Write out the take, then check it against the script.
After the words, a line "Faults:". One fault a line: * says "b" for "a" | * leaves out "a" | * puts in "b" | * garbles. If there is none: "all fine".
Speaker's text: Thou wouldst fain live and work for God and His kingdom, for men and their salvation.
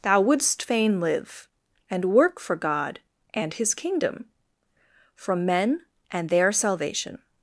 Thou wouldst fain live and work for God and His kingdom, from men and their salvation.
Faults:
* says "from" for "for"